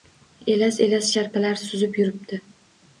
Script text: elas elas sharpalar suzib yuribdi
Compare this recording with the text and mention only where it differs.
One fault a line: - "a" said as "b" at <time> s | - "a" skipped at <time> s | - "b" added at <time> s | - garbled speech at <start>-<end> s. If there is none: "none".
none